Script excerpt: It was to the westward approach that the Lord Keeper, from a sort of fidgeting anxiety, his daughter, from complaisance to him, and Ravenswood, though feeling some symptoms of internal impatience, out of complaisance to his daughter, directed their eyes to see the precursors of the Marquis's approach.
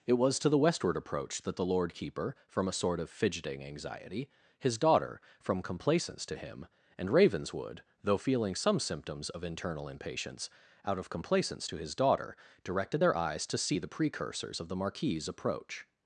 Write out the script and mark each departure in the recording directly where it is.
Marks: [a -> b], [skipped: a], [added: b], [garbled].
It was to the westward approach that the Lord Keeper, from a sort of fidgeting anxiety, his daughter, from complaisance to him, and Ravenswood, though feeling some symptoms of internal impatience, out of complaisance to his daughter, directed their eyes to see the precursors of the Marquis's approach.